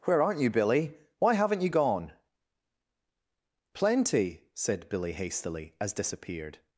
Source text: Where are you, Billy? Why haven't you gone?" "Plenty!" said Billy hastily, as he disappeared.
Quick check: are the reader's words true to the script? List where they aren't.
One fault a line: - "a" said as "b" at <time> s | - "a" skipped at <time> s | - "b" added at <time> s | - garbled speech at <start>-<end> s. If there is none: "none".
- "are" said as "aren't" at 0.2 s
- "he" skipped at 5.9 s